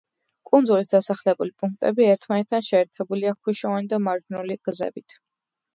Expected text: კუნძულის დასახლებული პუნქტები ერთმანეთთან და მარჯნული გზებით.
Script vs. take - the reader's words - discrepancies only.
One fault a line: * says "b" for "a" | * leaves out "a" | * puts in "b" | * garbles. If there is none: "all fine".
* puts in "შეერთებულია ქვიშოვანი"